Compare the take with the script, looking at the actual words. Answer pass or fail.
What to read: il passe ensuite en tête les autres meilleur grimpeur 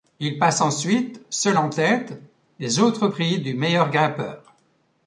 fail